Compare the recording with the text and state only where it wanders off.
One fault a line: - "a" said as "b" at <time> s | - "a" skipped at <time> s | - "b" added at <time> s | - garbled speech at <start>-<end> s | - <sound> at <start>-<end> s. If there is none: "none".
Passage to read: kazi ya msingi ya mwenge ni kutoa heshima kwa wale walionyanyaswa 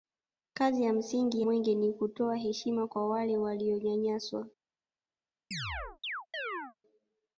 - "ya" skipped at 1.4 s
- chirp at 5.5-6.8 s